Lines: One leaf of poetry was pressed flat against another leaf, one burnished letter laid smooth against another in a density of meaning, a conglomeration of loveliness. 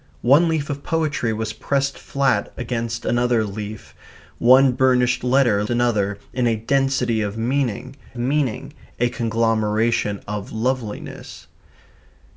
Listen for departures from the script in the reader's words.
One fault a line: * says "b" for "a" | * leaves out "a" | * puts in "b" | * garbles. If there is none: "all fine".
* leaves out "laid smooth against"
* puts in "meaning"